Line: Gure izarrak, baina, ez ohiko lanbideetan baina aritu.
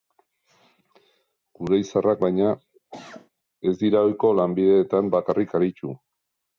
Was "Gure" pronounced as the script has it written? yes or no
yes